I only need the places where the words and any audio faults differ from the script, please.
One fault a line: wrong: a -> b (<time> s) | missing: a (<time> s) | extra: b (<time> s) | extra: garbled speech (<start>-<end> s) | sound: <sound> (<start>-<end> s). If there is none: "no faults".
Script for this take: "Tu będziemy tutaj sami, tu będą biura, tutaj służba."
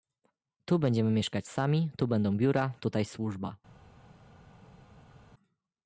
wrong: tutaj -> mieszkać (1.1 s)